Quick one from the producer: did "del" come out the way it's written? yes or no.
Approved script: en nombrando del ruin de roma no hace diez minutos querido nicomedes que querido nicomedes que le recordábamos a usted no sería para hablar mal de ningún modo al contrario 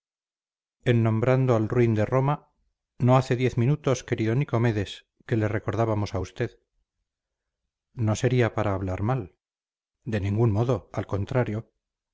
no